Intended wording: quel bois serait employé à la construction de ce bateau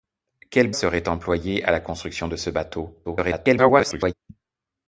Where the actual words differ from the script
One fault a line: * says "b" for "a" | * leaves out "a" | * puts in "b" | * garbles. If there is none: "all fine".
* leaves out "bois"
* garbles